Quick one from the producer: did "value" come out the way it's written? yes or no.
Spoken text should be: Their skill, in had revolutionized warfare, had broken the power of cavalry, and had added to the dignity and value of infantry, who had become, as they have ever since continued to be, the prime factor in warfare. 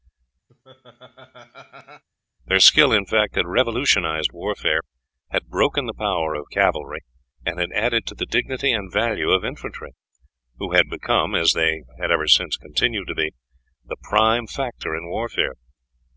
yes